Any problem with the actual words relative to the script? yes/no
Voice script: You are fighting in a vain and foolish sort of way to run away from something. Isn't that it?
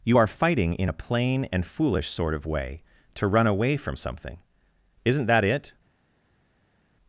yes